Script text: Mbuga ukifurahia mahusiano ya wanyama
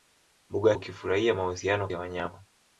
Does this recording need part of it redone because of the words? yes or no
no